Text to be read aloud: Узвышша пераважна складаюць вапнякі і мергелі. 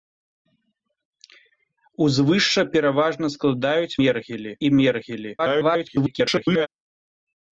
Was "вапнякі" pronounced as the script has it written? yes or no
no